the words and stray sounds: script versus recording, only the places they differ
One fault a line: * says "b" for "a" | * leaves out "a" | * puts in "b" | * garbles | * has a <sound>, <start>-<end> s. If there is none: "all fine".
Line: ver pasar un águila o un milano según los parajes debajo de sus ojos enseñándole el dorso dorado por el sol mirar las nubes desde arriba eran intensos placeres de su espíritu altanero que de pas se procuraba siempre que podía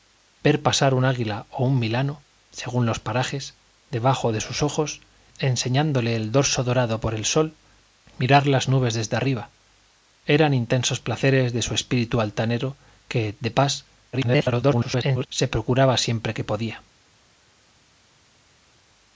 * garbles